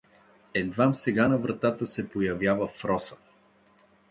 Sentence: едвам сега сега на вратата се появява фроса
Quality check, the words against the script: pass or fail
fail